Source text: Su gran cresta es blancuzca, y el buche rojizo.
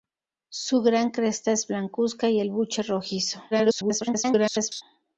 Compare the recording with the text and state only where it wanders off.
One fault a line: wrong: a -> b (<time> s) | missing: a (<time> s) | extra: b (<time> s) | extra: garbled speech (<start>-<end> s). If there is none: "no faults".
extra: garbled speech (3.5-4.8 s)